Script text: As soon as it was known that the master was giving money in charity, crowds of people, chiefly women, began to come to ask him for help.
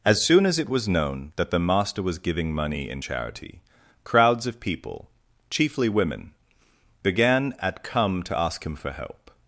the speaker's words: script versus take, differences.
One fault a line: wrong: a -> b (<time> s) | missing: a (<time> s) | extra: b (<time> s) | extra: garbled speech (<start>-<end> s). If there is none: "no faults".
wrong: to -> at (7.6 s)